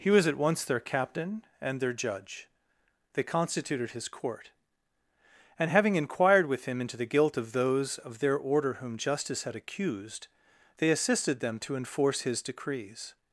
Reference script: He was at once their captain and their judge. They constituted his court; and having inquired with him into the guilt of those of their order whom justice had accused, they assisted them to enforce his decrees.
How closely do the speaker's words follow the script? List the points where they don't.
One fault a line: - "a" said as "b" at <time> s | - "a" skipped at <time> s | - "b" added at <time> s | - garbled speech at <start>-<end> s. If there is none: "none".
none